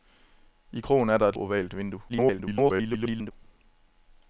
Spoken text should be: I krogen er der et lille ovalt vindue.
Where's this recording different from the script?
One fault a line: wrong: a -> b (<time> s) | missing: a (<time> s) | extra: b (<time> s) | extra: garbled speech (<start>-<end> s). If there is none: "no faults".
missing: lille (1.4 s)
extra: garbled speech (2.1-3.3 s)